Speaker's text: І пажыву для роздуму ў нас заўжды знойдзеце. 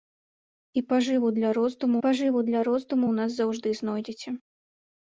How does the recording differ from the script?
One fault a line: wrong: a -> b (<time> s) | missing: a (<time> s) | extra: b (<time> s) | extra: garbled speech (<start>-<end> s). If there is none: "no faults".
extra: пажыву для роздуму (2.1 s)